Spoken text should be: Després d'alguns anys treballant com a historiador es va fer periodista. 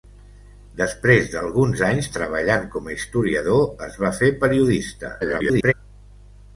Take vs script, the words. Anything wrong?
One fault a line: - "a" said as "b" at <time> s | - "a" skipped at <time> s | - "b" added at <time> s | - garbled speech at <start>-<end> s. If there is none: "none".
- garbled speech at 5.2-5.7 s